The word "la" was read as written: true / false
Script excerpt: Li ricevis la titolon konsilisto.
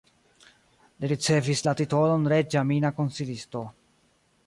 true